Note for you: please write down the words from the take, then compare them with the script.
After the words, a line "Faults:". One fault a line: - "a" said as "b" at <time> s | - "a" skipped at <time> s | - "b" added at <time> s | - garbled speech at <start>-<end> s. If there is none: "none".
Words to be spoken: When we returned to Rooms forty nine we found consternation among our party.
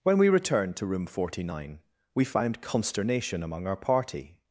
When we returned to Room forty nine we found consternation among our party.
Faults:
- "Rooms" said as "Room" at 0.9 s